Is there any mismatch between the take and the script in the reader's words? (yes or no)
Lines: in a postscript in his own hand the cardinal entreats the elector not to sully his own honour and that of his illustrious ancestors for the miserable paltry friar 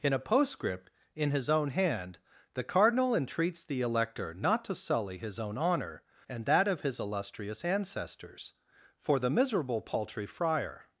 no